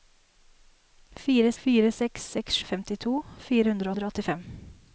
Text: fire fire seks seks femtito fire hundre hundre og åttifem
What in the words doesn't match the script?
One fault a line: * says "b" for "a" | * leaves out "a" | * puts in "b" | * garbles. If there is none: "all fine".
all fine